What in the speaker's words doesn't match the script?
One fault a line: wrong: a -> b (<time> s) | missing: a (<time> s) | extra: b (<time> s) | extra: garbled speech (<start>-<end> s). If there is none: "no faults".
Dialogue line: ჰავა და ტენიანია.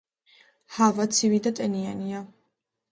extra: ცივი (1.2 s)